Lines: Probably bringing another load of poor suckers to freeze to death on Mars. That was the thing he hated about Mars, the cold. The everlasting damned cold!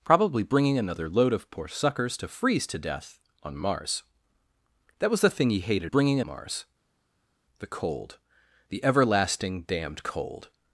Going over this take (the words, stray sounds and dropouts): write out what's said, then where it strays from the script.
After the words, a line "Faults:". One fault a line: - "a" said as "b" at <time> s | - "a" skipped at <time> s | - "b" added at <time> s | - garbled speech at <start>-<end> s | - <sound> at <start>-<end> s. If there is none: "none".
Probably bringing another load of poor suckers to freeze to death on Mars. That was the thing he hated bringing Mars, the cold. The everlasting damned cold!
Faults:
- "about" said as "bringing" at 5.9 s